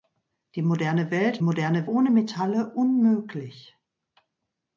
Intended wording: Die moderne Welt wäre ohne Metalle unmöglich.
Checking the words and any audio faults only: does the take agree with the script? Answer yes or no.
no